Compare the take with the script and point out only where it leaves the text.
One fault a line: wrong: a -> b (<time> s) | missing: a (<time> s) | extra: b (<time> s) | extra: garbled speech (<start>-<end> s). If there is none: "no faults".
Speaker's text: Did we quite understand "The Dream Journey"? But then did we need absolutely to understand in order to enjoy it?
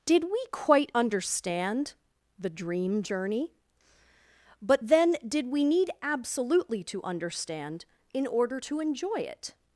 no faults